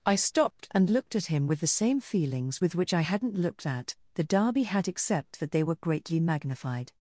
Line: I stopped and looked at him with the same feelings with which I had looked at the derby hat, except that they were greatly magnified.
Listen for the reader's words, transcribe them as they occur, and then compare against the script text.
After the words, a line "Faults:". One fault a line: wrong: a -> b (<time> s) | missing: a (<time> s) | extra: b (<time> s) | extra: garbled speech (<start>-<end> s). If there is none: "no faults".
I stopped and looked at him with the same feelings with which I hadn't looked at the derby hat, except that they were greatly magnified.
Faults:
wrong: had -> hadn't (3.0 s)